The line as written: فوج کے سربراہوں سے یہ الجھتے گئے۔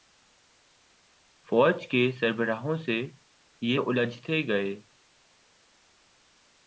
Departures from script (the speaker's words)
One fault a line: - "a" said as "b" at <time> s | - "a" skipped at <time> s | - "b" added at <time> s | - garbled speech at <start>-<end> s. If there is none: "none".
none